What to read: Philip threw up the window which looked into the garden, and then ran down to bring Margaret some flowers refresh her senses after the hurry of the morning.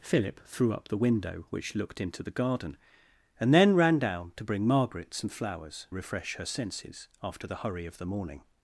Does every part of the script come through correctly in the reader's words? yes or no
yes